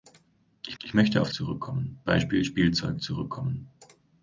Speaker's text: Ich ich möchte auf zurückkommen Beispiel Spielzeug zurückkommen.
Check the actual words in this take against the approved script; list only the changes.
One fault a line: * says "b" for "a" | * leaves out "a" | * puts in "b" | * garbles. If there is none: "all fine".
all fine